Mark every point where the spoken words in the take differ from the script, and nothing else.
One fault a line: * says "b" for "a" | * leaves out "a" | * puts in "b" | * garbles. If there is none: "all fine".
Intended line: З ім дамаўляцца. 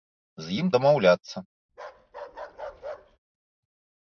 all fine